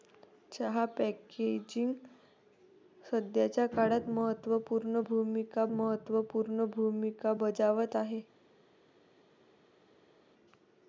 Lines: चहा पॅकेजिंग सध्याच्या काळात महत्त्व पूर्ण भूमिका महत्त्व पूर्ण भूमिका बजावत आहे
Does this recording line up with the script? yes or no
yes